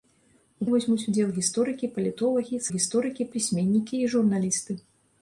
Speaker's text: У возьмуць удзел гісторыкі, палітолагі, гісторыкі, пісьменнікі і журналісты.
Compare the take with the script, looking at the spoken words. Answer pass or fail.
pass